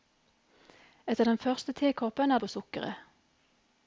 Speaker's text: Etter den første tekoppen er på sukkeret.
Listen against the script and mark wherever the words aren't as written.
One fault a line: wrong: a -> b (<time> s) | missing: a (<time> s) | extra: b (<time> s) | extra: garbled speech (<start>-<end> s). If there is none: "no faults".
no faults